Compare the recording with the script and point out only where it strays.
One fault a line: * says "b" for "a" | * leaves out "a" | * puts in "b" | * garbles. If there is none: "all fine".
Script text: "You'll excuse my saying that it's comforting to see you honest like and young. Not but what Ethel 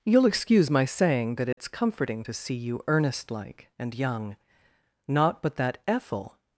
* says "earnest" for "honest"
* says "that" for "what"